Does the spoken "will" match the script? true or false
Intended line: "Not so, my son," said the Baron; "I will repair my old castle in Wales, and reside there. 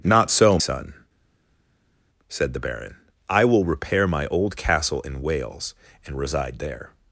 true